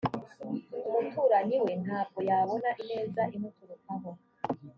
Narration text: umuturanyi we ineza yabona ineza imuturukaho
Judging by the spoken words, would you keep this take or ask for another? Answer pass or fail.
fail